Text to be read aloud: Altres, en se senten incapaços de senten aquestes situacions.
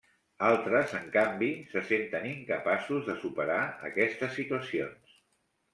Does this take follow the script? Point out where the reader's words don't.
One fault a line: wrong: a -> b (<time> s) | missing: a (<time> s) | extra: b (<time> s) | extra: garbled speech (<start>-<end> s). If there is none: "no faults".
extra: canvi (1.2 s)
wrong: senten -> superar (3.3 s)